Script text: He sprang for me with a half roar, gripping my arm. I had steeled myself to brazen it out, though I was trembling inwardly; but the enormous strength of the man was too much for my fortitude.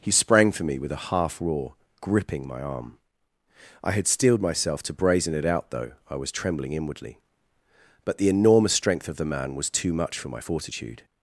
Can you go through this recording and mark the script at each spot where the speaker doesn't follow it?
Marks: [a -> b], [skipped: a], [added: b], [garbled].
He sprang for me with a half roar, gripping my arm. I had steeled myself to brazen it out, though I was trembling inwardly; but the enormous strength of the man was too much for my fortitude.